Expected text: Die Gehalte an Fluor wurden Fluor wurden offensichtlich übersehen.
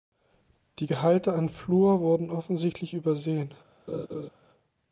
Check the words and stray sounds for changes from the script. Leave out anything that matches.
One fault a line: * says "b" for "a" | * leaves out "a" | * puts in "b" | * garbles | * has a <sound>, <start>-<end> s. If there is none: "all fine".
* leaves out "Fluor wurden"
* has a laugh, 3.9-4.3 s